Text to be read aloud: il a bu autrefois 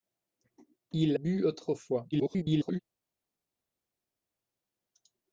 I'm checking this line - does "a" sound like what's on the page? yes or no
no